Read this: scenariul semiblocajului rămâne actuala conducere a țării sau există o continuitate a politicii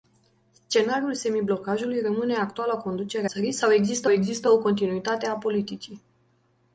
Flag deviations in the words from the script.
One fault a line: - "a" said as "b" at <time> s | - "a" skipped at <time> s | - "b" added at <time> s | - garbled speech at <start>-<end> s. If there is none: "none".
- "a" skipped at 3.3 s
- "există" added at 4.1 s